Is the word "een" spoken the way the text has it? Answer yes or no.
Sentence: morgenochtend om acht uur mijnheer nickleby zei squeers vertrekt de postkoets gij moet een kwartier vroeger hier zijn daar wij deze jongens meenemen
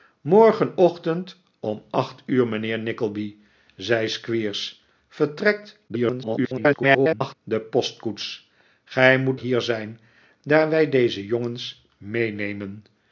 no